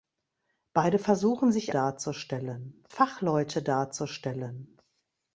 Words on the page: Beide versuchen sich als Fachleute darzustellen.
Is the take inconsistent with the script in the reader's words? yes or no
yes